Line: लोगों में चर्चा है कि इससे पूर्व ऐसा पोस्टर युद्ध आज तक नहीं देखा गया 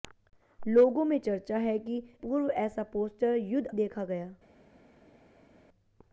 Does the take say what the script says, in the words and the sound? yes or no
no